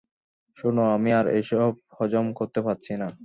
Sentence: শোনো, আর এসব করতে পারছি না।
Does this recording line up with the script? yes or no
no